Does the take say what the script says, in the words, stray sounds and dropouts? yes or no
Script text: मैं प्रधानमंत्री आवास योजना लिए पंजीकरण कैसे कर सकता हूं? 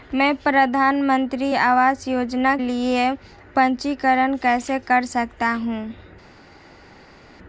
yes